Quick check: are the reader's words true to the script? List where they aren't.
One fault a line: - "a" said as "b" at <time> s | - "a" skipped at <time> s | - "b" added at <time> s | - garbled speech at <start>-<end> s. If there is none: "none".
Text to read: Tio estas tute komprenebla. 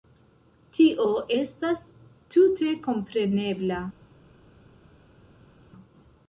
none